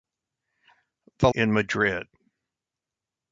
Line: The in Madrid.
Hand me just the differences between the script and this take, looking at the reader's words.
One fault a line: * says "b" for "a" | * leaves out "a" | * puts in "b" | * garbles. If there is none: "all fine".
all fine